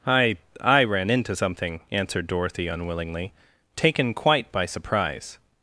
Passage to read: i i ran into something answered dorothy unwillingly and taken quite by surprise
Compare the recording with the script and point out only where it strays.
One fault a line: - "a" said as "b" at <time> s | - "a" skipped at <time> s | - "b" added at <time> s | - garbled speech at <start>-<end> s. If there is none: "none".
- "and" skipped at 3.3 s